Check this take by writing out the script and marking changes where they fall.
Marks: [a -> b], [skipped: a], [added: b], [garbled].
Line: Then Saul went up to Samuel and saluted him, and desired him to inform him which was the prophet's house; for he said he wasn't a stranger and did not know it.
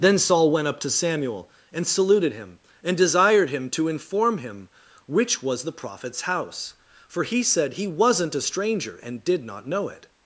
Then Saul went up to Samuel and saluted him, and desired him to inform him which was the prophet's house; for he said he wasn't a stranger and did not know it.